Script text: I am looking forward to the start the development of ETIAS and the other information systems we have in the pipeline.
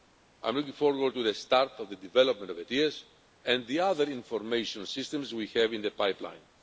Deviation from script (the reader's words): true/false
true